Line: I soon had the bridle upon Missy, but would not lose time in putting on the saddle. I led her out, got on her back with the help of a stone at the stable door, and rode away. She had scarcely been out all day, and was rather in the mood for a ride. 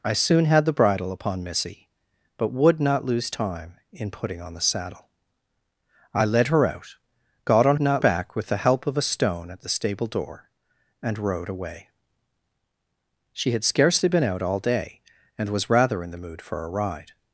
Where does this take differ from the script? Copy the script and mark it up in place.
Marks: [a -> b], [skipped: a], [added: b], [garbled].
I soon had the bridle upon Missy, but would not lose time in putting on the saddle. I led her out, got on [her -> not] back with the help of a stone at the stable door, and rode away. She had scarcely been out all day, and was rather in the mood for a ride.